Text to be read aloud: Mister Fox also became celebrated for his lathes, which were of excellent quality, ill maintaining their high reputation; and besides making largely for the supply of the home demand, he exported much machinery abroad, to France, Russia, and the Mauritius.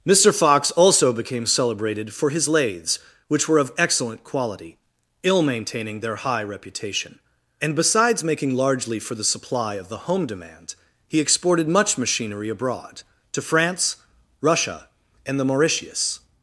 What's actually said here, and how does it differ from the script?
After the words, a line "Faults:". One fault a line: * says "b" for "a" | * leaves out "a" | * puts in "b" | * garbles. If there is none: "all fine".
Mister Fox also became celebrated for his lathes, which were of excellent quality, ill maintaining their high reputation; and besides making largely for the supply of the home demand, he exported much machinery abroad, to France, Russia, and the Mauritius.
Faults:
all fine